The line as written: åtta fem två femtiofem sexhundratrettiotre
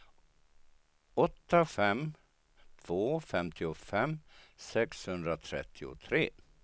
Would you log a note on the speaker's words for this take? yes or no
no